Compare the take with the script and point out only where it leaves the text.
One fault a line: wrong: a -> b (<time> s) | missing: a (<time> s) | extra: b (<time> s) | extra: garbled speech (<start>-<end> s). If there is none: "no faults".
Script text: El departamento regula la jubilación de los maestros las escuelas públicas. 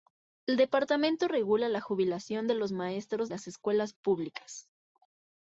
no faults